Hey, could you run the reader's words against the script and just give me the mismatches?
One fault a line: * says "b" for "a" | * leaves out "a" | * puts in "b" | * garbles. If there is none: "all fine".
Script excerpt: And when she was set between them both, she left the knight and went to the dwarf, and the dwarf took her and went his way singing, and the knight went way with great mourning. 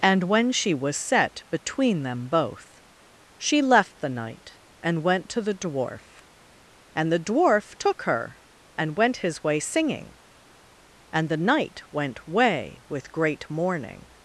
all fine